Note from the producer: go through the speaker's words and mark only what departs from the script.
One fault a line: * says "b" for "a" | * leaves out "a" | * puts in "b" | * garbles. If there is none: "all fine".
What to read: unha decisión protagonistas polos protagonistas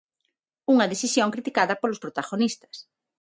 * says "criticada" for "protagonistas"